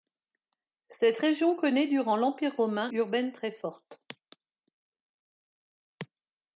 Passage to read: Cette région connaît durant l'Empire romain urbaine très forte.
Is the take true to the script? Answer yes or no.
yes